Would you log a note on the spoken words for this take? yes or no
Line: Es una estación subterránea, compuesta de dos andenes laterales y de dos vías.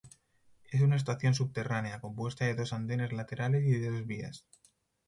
no